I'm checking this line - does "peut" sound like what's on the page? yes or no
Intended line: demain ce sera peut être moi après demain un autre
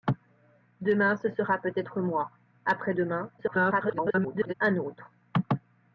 yes